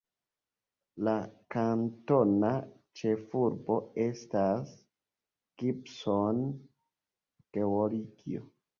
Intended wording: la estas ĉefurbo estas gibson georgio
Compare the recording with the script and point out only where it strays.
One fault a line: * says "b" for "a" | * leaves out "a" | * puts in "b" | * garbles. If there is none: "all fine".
* says "kantona" for "estas"